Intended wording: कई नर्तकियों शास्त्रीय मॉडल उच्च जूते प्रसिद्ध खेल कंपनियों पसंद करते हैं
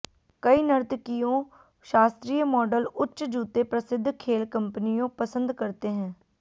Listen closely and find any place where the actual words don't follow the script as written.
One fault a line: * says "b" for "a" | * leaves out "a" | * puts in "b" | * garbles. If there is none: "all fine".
all fine